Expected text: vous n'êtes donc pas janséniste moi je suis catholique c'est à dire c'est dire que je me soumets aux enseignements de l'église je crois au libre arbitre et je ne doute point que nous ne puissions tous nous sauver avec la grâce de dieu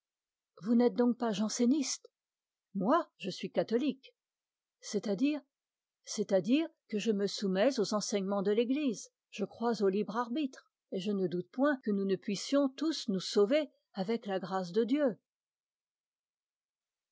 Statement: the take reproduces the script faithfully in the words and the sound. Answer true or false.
false